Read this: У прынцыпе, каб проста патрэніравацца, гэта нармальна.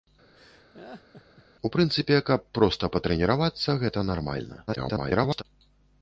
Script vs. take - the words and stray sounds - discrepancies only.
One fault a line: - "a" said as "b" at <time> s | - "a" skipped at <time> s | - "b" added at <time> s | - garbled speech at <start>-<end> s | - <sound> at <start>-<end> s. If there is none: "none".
- laugh at 0.3-1.4 s
- garbled speech at 4.7-5.4 s